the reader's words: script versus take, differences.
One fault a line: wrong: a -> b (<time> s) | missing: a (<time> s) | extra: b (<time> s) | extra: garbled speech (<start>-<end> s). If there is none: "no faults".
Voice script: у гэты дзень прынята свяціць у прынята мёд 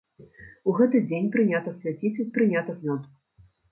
no faults